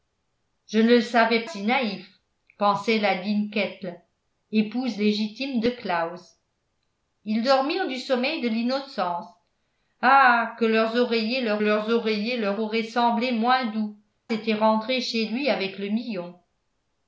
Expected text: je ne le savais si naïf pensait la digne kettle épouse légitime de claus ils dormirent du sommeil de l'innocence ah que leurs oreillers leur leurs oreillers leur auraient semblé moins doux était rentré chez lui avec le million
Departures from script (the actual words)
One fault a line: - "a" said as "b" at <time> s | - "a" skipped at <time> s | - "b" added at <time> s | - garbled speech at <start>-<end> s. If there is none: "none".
none